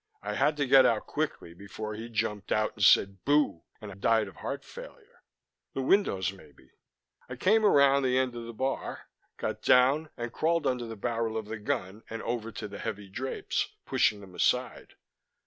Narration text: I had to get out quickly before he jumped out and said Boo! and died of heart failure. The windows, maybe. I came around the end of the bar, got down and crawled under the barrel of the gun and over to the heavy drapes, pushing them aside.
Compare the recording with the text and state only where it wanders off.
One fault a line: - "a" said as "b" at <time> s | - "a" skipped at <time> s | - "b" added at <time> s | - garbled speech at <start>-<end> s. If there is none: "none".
none